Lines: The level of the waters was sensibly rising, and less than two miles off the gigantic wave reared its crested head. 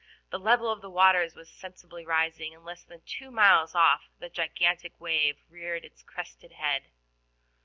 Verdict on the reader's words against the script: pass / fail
pass